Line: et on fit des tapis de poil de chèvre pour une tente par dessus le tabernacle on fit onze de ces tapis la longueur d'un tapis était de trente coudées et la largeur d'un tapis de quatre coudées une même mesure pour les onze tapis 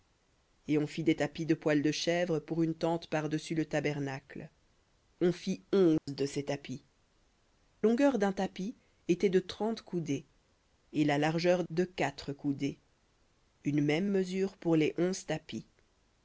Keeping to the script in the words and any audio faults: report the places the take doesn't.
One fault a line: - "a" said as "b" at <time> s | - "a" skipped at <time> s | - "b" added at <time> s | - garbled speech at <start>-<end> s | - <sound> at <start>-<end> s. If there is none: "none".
- dropout at 6.0-6.1 s
- "la" skipped at 6.8 s
- "d'un tapis" skipped at 11.6 s